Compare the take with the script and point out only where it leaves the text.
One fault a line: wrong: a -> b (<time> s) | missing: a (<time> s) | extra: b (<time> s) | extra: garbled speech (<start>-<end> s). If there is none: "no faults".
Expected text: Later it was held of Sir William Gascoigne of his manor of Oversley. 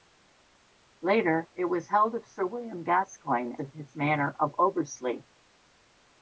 no faults